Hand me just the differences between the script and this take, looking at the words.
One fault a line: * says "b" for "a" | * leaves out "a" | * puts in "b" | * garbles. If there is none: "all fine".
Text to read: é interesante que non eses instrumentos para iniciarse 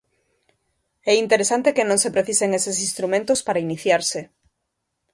* puts in "se precisen"